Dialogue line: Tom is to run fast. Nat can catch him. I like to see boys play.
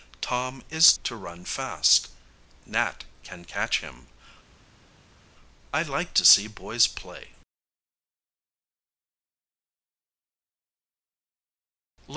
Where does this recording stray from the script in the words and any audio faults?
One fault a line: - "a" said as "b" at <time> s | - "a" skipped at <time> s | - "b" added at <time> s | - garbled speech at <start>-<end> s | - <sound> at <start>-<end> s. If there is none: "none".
none